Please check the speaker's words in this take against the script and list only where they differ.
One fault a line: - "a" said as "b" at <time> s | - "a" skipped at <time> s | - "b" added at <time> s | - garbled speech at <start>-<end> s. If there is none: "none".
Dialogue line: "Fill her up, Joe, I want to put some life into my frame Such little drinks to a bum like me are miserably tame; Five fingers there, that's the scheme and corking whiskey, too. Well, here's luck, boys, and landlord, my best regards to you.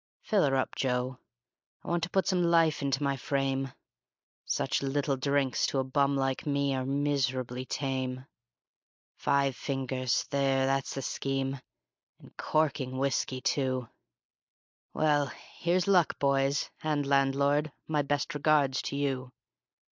none